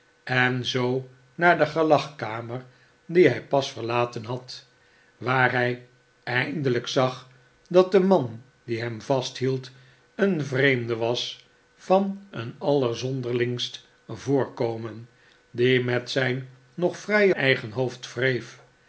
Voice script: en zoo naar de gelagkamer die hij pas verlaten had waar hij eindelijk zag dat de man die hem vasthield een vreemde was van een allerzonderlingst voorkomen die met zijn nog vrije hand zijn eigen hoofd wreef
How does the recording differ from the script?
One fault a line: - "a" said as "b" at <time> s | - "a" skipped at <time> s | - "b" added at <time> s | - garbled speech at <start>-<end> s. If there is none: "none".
- "hand zijn" skipped at 17.3 s